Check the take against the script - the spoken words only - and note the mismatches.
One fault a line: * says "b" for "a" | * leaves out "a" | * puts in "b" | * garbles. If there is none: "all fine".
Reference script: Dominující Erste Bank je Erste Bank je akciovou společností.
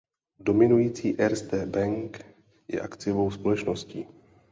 * leaves out "Erste Bank je"